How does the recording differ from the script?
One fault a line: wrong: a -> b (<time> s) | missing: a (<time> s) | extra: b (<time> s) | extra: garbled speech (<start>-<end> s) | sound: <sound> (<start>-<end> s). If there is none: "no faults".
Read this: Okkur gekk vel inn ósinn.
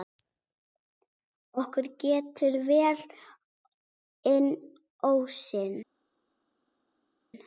no faults